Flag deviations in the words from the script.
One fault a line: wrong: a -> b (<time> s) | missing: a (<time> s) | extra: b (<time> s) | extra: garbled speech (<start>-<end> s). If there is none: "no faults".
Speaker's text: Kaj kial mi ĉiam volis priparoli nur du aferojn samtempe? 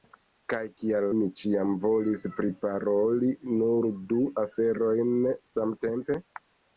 no faults